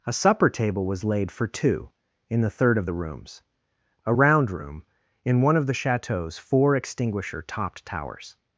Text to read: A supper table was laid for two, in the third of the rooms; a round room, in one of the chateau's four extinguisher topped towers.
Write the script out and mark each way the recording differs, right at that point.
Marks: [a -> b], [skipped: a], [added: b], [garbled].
A supper table was laid for two, in the third of the rooms; a round room, in one of the chateau's four extinguisher topped towers.